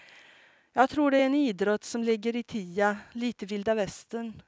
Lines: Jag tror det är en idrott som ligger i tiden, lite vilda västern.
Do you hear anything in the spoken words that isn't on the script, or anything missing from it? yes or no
no